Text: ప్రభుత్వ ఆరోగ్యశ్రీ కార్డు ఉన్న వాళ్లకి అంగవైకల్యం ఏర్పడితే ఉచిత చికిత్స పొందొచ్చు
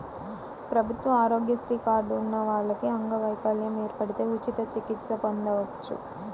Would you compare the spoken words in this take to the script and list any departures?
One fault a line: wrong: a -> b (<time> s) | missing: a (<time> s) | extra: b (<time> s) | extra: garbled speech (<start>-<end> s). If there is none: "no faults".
no faults